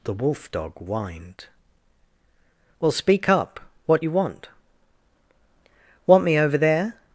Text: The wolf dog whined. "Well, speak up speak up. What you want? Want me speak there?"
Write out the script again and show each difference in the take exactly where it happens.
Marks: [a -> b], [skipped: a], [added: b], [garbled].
The wolf dog whined. "Well, speak up [skipped: speak up.] What you want? Want me [speak -> over] there?"